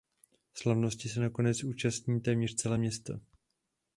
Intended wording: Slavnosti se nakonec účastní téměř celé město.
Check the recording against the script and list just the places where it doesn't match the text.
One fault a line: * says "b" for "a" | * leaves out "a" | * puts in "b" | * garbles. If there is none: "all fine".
all fine